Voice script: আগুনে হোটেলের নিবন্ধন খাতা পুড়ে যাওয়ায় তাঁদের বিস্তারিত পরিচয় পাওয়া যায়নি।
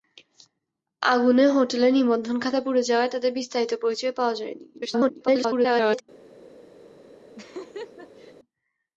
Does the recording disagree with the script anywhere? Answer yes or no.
yes